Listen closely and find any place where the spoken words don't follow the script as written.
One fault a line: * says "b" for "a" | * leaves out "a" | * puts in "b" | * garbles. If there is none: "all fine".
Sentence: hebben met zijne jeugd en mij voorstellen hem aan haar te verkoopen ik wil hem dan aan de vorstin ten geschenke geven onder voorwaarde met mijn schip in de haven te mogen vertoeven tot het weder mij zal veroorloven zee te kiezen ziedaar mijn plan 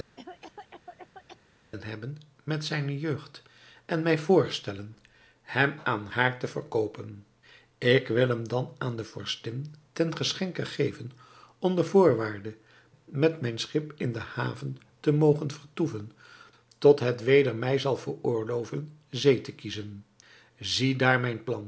all fine